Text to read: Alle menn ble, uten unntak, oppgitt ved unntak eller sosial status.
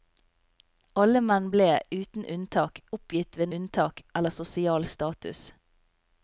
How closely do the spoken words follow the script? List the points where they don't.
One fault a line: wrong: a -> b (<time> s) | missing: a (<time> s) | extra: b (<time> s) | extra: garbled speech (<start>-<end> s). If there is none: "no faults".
no faults